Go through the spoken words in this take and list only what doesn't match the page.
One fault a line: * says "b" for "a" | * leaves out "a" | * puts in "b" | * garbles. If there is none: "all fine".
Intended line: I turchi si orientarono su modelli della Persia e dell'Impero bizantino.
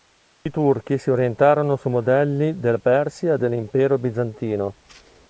all fine